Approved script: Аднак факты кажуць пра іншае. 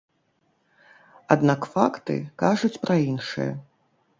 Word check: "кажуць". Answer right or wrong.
right